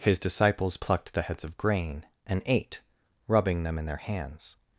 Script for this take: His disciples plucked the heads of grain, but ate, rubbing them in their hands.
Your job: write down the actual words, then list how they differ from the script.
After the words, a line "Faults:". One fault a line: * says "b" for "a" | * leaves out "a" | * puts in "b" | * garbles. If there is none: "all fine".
His disciples plucked the heads of grain, and ate, rubbing them in their hands.
Faults:
* says "and" for "but"